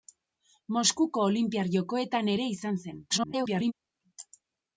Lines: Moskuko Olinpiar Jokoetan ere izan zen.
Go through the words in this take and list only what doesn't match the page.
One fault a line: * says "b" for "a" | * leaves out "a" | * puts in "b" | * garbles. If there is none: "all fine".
* garbles